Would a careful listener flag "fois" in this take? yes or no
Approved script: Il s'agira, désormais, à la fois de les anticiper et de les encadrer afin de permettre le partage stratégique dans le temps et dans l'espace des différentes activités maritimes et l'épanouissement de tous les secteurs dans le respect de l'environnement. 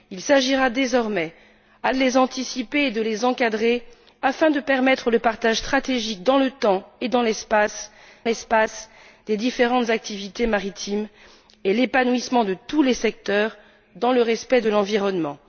yes